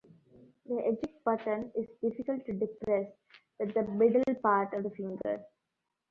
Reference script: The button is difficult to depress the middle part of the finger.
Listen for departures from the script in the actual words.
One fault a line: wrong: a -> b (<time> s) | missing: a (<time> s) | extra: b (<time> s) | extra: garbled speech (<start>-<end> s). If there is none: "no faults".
extra: eject (0.8 s)
extra: with (3.6 s)